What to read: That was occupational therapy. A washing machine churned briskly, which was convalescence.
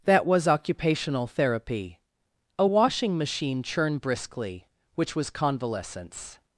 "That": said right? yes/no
yes